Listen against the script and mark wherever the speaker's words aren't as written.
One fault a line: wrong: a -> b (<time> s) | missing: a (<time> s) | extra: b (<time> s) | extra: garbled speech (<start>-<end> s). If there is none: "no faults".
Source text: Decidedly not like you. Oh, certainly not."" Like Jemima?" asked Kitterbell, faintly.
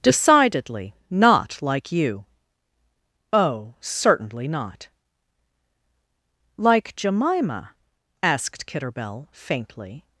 no faults